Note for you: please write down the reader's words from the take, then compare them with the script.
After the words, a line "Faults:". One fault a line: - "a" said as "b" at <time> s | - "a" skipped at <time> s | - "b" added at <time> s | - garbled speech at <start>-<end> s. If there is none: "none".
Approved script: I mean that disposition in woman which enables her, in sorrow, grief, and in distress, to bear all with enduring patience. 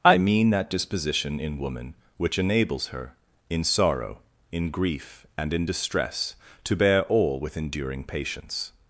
I mean that disposition in woman which enables her, in sorrow, in grief, and in distress, to bear all with enduring patience.
Faults:
- "in" added at 4.5 s